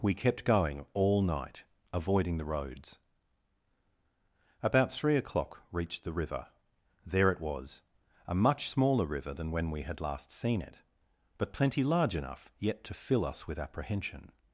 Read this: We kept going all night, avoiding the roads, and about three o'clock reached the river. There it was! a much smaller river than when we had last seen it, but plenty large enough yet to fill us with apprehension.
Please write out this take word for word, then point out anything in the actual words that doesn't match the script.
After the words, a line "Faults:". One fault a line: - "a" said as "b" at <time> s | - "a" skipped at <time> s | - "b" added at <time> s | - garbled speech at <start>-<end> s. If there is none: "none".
We kept going all night, avoiding the roads, about three o'clock reached the river. There it was! a much smaller river than when we had last seen it, but plenty large enough yet to fill us with apprehension.
Faults:
- "and" skipped at 3.0 s